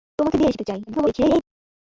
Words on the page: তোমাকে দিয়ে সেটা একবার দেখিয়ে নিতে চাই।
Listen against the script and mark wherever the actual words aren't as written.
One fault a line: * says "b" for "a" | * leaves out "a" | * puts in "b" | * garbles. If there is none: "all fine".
* leaves out "সেটা একবার দেখিয়ে"
* garbles